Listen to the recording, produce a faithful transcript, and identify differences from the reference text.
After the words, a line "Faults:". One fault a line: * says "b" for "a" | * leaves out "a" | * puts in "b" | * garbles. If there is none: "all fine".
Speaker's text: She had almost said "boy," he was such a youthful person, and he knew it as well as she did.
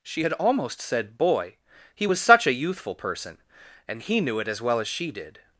She had almost said "boy," he was such a youthful person, and he knew it as well as she did.
Faults:
all fine